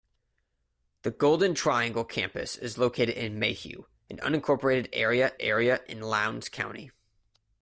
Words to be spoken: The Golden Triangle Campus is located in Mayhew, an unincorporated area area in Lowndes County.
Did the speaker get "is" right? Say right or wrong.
right